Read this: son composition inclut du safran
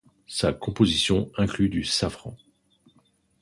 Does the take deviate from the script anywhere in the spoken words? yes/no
yes